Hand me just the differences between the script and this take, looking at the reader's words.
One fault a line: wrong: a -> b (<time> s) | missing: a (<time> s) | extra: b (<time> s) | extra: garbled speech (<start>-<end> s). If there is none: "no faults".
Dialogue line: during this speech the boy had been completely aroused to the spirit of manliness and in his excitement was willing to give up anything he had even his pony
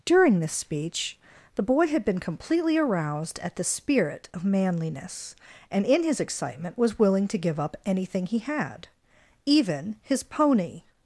wrong: to -> at (3.4 s)